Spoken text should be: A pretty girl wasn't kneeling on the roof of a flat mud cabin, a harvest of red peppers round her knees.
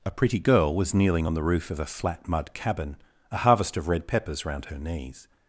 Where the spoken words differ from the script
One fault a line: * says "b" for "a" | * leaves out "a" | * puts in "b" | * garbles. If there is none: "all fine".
* says "was" for "wasn't"